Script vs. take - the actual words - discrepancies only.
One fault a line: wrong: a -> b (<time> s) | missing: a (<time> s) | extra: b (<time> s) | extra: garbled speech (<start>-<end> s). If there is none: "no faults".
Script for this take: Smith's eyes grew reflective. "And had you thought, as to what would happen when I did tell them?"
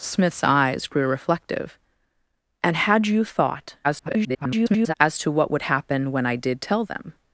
extra: garbled speech (3.8-4.9 s)